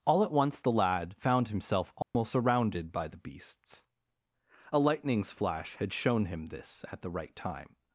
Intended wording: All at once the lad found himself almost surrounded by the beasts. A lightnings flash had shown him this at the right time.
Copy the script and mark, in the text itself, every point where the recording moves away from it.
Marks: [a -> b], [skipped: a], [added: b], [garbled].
All at once the lad found himself almost surrounded by the beasts. A lightnings flash had shown him this at the right time.